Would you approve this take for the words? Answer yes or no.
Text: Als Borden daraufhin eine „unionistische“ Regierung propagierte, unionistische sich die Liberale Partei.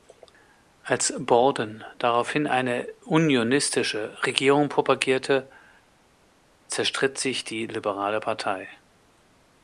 no